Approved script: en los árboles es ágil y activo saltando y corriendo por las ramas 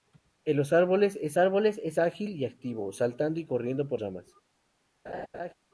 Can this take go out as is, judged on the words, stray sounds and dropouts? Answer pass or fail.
fail